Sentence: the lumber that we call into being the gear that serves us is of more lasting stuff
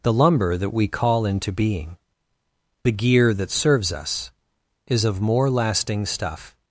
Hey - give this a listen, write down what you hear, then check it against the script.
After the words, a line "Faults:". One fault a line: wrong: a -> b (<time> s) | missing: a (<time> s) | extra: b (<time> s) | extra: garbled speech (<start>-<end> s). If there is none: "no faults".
the lumber that we call into being the gear that serves us is of more lasting stuff
Faults:
no faults